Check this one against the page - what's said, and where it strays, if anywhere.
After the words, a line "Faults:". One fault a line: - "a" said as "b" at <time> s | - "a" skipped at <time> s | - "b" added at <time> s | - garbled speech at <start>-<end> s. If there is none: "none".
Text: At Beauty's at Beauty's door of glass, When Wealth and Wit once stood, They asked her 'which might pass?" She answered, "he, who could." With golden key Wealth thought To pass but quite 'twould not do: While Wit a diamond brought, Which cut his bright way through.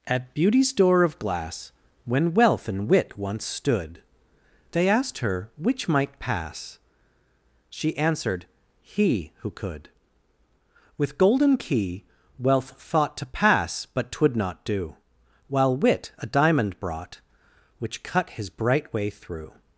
At Beauty's door of glass, When Wealth and Wit once stood, They asked her 'which might pass?" She answered, "he, who could." With golden key Wealth thought To pass but 'twould not do: While Wit a diamond brought, Which cut his bright way through.
Faults:
- "at Beauty's" skipped at 0.7 s
- "quite" skipped at 14.1 s